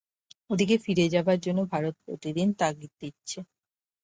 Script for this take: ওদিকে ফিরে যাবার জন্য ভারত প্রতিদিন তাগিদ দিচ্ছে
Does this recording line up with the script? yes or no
yes